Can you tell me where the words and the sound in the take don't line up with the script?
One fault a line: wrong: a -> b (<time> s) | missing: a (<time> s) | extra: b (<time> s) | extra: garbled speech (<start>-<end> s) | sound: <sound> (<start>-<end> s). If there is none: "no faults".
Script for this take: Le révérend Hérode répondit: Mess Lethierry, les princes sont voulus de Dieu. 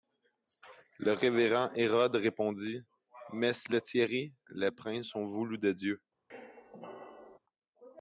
sound: squeak (6.3-7.4 s)